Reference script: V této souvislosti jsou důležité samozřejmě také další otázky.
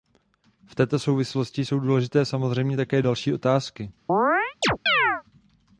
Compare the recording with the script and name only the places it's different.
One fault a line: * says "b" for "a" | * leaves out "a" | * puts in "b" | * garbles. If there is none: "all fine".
all fine